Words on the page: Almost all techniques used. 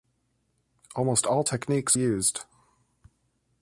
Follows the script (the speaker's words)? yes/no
yes